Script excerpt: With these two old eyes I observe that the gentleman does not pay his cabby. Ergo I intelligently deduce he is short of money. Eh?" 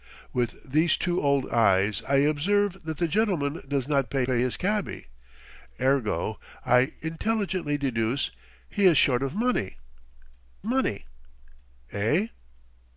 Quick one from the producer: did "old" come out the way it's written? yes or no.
yes